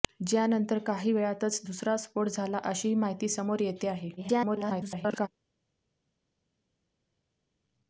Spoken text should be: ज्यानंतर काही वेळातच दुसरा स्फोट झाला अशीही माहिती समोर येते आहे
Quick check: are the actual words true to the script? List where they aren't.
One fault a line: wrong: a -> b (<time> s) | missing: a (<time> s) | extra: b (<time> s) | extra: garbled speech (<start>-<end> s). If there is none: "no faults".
extra: garbled speech (4.2-5.3 s)